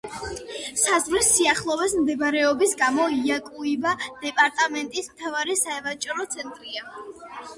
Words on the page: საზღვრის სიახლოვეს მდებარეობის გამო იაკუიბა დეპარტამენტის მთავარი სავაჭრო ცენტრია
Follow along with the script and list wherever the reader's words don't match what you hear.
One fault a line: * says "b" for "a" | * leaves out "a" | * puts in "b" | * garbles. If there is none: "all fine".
all fine